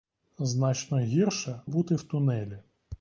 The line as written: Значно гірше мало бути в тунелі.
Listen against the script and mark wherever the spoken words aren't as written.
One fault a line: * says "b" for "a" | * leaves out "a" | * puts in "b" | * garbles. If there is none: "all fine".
* leaves out "мало"